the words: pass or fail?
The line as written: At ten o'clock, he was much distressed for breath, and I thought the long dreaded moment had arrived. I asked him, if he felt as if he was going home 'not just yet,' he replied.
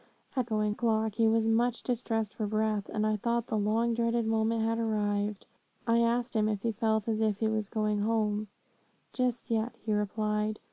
fail